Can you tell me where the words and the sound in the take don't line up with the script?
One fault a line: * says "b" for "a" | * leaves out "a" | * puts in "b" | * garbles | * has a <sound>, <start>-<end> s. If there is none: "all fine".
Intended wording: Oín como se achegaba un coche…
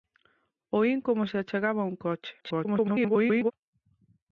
* garbles